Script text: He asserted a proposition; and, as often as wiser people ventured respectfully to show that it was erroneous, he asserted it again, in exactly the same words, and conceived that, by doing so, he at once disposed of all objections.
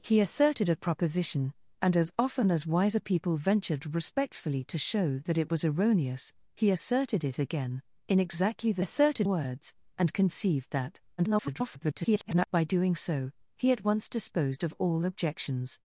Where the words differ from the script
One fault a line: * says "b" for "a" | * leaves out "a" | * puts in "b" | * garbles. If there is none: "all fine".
* says "asserted" for "same"
* garbles